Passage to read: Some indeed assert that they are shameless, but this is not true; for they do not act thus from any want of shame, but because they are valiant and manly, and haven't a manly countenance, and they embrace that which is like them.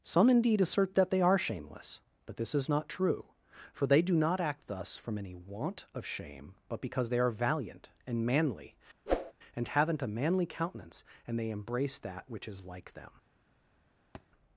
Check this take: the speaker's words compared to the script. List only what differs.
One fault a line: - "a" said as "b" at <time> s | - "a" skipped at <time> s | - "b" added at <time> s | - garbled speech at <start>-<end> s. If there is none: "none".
none